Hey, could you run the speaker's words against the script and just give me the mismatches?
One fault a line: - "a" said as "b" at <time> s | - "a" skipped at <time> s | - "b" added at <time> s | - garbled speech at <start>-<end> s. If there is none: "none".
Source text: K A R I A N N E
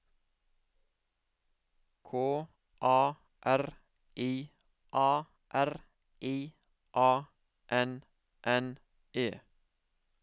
- "R I A" added at 5.5 s